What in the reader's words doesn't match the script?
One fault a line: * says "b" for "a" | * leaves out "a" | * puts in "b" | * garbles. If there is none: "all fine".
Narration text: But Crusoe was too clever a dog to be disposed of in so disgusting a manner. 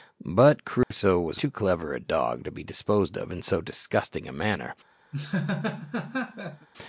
all fine